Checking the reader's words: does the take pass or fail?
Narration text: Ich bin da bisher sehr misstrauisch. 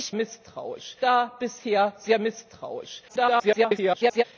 fail